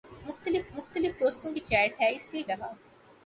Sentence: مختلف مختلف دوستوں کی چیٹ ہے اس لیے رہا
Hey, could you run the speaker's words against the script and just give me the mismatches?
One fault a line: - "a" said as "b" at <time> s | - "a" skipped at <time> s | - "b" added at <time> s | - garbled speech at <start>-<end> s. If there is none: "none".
none